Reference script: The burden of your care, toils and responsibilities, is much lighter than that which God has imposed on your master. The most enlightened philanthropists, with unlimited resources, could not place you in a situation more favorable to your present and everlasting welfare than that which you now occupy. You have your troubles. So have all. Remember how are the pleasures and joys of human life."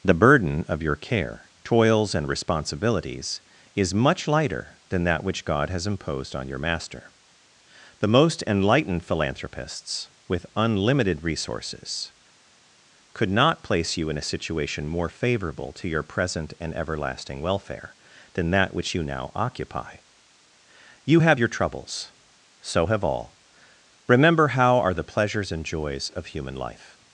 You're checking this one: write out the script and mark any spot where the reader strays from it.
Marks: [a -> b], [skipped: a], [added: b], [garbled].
The burden of your care, toils and responsibilities, is much lighter than that which God has imposed on your master. The most enlightened philanthropists, with unlimited resources, could not place you in a situation more favorable to your present and everlasting welfare than that which you now occupy. You have your troubles. So have all. Remember how are the pleasures and joys of human life."